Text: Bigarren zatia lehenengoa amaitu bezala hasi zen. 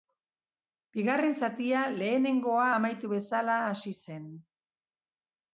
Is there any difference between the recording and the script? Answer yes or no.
no